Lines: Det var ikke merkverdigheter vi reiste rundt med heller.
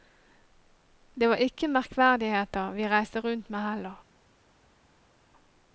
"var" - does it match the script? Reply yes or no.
yes